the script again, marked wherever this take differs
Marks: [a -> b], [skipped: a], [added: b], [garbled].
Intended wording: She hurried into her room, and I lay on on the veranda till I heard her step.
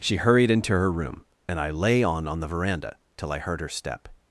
She hurried into her room, and I lay on on the veranda till I heard her step.